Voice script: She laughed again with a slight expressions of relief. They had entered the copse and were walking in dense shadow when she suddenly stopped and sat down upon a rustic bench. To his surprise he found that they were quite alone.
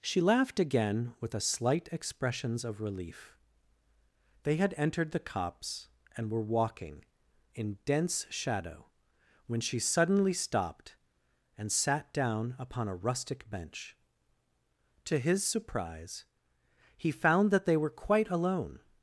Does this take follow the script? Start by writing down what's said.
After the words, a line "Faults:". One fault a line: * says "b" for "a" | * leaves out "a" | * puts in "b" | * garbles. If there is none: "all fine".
She laughed again with a slight expressions of relief. They had entered the copse and were walking in dense shadow when she suddenly stopped and sat down upon a rustic bench. To his surprise he found that they were quite alone.
Faults:
all fine